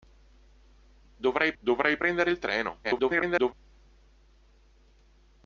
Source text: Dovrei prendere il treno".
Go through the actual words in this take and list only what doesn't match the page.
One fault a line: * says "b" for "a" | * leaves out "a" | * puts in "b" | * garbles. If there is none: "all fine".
* puts in "dovrei"
* garbles